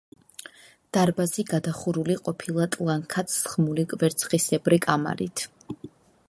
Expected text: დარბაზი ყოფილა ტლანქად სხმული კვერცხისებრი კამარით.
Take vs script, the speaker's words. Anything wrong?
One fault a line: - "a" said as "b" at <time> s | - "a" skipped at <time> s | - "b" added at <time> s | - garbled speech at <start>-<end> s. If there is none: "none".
- "გადახურული" added at 1.5 s